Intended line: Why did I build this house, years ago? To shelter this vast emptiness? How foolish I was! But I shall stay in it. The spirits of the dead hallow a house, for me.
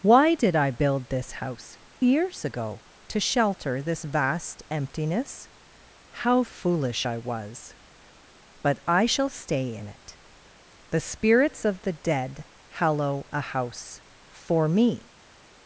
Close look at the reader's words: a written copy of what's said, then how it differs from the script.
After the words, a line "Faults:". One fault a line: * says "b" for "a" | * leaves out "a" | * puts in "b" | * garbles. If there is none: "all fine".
Why did I build this house, years ago? To shelter this vast emptiness? How foolish I was! But I shall stay in it. The spirits of the dead hallow a house, for me.
Faults:
all fine